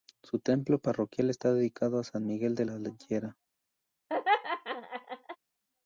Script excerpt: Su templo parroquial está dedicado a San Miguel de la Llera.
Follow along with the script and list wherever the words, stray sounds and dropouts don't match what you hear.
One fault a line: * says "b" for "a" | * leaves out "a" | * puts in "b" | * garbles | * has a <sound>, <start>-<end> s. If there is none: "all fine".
* has a laugh, 4.1-5.4 s